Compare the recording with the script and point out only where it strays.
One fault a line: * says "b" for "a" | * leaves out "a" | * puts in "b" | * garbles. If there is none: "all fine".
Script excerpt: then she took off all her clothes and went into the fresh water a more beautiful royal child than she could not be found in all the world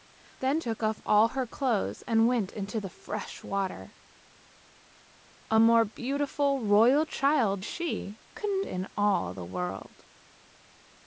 * leaves out "she"
* leaves out "than"
* leaves out "not be found"